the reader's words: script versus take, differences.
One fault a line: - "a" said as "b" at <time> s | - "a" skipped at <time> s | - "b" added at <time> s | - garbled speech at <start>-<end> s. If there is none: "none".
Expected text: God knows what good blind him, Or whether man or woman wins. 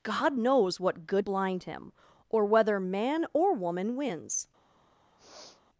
none